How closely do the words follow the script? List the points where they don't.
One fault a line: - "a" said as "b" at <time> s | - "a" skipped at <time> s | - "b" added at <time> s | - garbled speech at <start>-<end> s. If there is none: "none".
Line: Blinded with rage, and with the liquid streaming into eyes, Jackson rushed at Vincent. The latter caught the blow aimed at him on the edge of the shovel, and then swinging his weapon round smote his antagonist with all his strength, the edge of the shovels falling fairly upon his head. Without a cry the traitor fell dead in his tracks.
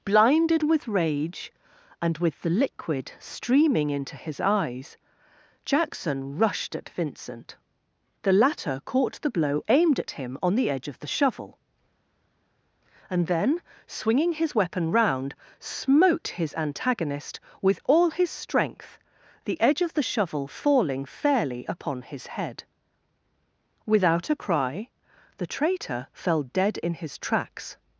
- "his" added at 4.2 s
- "shovels" said as "shovel" at 20.1 s